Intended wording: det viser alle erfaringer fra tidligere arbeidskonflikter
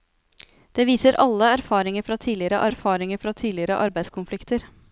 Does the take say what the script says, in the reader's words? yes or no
no